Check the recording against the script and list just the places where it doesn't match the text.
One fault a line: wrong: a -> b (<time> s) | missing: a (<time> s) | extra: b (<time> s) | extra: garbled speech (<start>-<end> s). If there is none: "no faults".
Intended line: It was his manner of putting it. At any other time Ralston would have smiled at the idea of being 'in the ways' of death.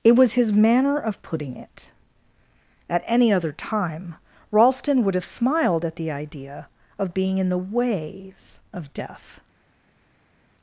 no faults